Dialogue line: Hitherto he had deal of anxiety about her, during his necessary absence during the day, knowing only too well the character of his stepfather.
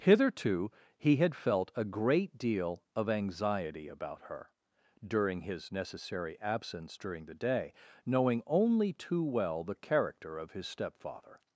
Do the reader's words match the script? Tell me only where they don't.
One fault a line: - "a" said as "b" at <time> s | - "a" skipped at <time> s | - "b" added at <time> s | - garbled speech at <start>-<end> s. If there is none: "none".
- "felt a great" added at 1.4 s